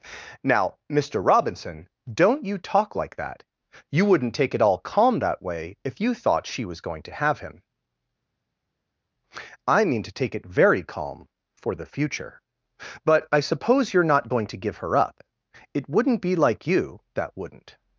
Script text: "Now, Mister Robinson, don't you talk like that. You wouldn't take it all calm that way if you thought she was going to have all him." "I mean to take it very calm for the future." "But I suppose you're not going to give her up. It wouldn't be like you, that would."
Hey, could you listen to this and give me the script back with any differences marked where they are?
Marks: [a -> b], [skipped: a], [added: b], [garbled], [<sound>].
"Now, Mister Robinson, don't you talk like that. You wouldn't take it all calm that way if you thought she was going to have [skipped: all] him." "I mean to take it very calm for the future." "But I suppose you're not going to give her up. It wouldn't be like you, that [would." -> wouldn't]